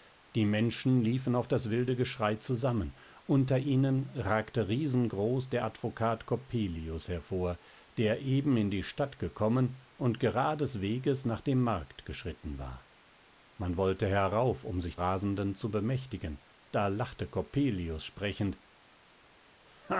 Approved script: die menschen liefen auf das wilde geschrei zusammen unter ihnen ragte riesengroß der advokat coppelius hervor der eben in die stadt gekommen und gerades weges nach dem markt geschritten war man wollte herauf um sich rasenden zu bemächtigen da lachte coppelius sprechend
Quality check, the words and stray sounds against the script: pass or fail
pass